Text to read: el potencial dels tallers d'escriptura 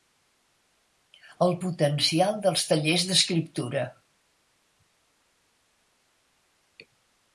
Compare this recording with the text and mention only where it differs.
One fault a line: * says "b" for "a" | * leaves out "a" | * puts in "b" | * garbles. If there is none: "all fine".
all fine